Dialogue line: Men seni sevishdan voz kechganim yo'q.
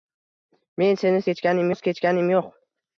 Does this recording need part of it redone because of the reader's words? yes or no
yes